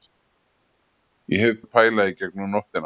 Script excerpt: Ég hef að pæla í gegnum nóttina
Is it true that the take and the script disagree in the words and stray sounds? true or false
false